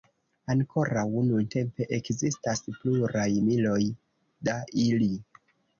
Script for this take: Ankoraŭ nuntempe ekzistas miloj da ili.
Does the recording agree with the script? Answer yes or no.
no